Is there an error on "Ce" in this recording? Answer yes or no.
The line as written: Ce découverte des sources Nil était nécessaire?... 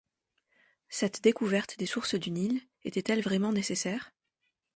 yes